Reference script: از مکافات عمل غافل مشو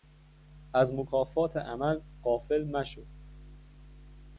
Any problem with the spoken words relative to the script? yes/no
no